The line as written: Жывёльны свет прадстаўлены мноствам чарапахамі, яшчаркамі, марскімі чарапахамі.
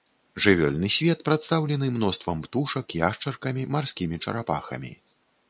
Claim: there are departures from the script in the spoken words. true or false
true